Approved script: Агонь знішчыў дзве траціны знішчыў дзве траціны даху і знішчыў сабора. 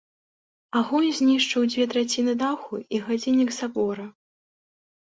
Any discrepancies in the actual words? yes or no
yes